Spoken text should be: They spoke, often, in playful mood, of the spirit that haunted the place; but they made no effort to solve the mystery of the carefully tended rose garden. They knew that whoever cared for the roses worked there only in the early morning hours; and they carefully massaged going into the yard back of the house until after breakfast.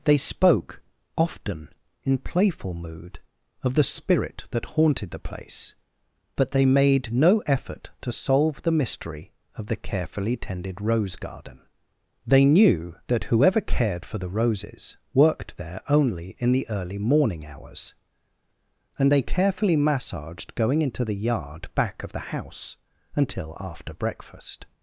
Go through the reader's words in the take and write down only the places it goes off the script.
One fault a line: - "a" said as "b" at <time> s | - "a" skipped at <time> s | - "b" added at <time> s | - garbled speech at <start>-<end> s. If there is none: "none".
none